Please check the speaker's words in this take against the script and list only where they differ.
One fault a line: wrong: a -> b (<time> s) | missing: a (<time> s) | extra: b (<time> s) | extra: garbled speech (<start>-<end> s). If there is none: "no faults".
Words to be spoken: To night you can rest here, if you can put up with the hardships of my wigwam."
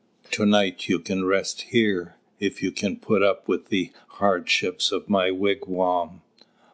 no faults